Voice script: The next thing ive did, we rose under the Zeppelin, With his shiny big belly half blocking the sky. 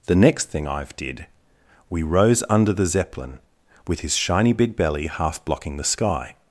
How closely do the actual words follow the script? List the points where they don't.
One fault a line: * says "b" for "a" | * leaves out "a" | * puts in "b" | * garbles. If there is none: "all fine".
all fine